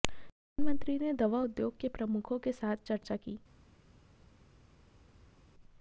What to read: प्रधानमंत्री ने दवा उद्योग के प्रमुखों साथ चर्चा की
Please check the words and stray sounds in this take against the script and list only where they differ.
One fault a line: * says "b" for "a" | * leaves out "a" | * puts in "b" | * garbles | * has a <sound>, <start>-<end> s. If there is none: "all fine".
* puts in "के"